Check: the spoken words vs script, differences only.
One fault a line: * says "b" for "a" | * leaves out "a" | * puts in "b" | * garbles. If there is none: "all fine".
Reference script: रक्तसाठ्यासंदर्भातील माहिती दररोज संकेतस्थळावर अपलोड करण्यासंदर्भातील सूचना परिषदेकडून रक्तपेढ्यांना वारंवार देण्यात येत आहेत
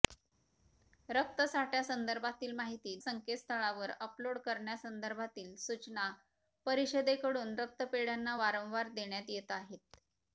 * leaves out "दररोज"